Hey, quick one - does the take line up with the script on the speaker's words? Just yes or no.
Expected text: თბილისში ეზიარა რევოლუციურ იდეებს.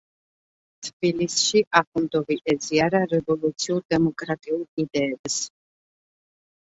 no